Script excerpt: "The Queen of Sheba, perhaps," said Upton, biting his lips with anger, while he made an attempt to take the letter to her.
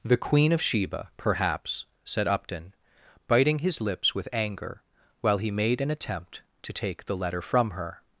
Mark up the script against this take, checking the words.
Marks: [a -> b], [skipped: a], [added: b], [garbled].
"The Queen of Sheba, perhaps," said Upton, biting his lips with anger, while he made an attempt to take the letter [to -> from] her.